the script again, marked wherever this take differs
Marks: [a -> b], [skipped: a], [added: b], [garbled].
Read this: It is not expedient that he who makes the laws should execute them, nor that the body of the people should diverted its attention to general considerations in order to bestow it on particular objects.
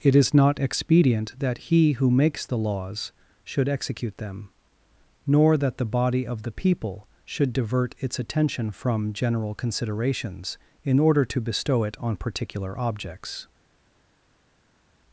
It is not expedient that he who makes the laws should execute them, nor that the body of the people should [diverted -> divert] its attention [to -> from] general considerations in order to bestow it on particular objects.